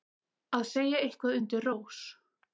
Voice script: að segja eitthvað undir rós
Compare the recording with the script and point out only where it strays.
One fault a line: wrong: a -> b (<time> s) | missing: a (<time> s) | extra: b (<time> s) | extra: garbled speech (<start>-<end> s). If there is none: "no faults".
no faults